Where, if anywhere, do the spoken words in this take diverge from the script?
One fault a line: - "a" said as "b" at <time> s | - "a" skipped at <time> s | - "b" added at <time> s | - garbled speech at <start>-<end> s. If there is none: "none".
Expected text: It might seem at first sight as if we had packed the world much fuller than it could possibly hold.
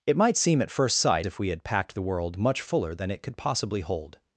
- "as" skipped at 1.3 s